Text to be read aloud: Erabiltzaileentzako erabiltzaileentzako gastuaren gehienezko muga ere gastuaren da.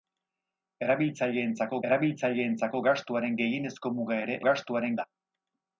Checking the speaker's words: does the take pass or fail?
pass